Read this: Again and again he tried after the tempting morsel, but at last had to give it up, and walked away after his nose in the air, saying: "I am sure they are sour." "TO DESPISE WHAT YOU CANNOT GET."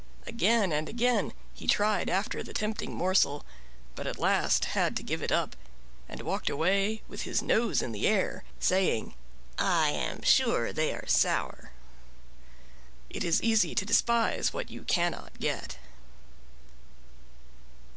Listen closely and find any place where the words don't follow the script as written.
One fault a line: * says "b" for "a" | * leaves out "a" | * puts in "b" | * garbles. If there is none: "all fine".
* says "with" for "after"
* puts in "IT IS EASY"